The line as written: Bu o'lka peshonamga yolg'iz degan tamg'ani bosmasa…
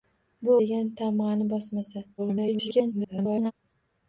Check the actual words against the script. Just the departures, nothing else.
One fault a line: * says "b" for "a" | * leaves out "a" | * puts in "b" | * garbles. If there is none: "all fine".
* leaves out "o'lka peshonamga yolg'iz"
* garbles